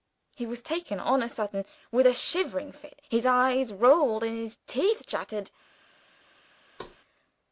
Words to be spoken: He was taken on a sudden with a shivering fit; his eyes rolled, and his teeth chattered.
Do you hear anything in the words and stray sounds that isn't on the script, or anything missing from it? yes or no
yes